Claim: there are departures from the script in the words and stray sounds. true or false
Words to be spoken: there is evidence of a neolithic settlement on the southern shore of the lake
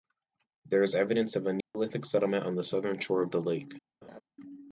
true